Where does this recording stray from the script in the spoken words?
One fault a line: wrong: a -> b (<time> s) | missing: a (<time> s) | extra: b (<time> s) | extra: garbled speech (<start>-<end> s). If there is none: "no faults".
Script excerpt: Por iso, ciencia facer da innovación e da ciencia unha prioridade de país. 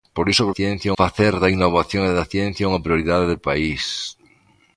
no faults